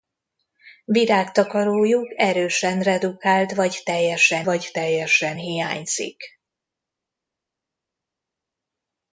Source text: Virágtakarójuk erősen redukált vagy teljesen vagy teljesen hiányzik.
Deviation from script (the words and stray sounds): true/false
false